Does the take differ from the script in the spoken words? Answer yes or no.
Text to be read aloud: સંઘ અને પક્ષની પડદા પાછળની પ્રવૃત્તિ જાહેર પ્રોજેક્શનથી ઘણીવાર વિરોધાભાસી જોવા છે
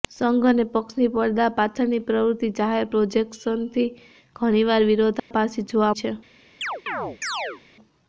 no